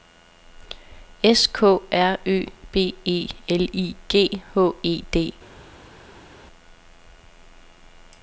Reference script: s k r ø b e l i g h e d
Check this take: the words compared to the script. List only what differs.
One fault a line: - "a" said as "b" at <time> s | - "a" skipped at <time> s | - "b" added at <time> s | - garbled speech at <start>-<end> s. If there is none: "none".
none